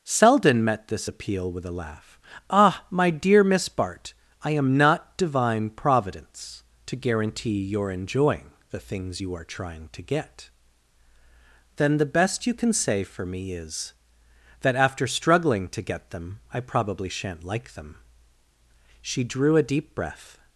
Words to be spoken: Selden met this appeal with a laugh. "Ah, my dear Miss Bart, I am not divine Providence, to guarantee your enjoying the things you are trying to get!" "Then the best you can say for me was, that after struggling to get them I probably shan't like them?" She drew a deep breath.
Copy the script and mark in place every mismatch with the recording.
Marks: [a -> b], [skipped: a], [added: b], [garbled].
Selden met this appeal with a laugh. "Ah, my dear Miss Bart, I am not divine Providence, to guarantee your enjoying the things you are trying to get!" "Then the best you can say for me [was, -> is] that after struggling to get them I probably shan't like them?" She drew a deep breath.